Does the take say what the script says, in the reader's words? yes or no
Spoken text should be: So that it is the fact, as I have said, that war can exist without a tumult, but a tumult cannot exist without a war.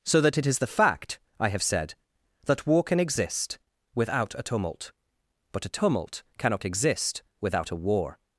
no